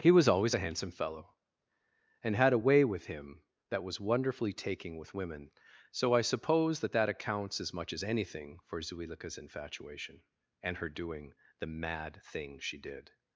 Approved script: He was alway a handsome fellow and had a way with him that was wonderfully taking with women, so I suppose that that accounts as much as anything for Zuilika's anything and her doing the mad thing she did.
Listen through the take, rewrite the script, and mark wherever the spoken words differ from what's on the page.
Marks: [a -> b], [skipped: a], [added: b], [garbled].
He was [alway -> always] a handsome fellow and had a way with him that was wonderfully taking with women, so I suppose that that accounts as much as anything for Zuilika's [anything -> infatuation] and her doing the mad thing she did.